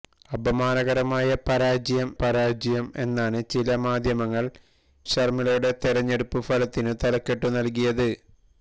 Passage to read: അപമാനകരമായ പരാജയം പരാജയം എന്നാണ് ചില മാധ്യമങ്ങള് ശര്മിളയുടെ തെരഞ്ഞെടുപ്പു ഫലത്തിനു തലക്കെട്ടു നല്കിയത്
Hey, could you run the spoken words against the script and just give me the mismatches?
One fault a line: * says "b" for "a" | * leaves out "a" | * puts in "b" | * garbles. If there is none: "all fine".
all fine